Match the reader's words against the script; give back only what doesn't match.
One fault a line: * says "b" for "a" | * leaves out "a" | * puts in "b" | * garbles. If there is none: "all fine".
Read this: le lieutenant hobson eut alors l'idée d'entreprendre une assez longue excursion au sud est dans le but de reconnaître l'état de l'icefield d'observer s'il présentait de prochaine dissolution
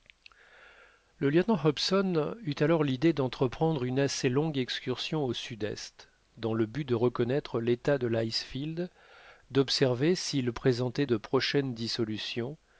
all fine